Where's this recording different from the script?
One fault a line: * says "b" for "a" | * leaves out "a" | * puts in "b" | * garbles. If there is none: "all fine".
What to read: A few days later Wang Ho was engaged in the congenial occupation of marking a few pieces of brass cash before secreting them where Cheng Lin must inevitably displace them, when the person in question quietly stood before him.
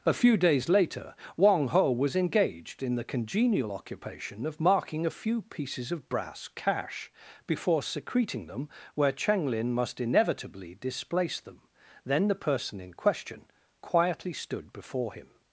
* says "then" for "when"